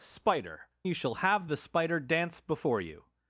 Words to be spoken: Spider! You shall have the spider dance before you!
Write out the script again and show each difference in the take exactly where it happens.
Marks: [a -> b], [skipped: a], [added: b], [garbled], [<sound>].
Spider! You shall have the spider dance before you!